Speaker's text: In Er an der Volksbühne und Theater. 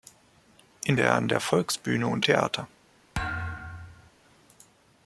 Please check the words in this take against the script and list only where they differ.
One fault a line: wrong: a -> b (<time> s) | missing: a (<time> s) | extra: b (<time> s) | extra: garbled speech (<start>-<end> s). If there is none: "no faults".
no faults